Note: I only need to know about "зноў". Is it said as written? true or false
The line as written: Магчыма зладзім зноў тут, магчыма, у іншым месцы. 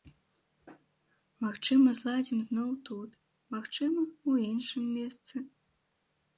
true